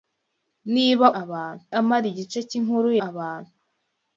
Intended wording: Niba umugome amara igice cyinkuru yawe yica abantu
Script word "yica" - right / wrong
wrong